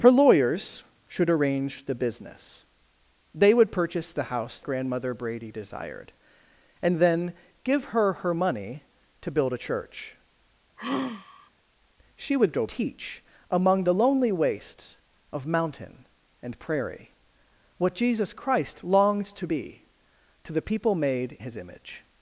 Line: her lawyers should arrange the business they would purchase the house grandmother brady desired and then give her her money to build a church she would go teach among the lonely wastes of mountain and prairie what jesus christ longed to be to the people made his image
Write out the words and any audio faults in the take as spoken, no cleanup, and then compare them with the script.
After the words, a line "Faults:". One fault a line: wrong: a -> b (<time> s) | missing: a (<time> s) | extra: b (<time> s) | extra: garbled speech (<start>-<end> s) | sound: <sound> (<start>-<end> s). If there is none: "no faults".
her lawyers should arrange the business they would purchase the house grandmother brady desired and then give her her money to build a church she would go teach among the lonely wastes of mountain and prairie what jesus christ longed to be to the people made his image
Faults:
sound: sigh (10.8-11.5 s)